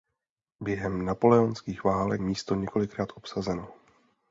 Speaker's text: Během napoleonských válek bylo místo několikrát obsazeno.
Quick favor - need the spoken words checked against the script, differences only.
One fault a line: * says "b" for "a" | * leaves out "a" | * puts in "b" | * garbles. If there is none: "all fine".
* leaves out "bylo"